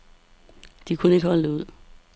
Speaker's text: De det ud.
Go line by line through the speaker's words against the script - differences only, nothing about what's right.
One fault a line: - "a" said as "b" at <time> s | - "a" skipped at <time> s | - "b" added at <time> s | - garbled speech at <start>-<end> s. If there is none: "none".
- "kunne ikke holde" added at 1.0 s